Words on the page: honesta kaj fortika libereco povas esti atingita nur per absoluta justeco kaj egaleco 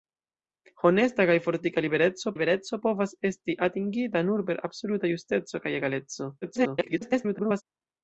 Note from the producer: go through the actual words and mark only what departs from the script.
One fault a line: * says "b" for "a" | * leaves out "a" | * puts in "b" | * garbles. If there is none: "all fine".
* puts in "libereco"
* garbles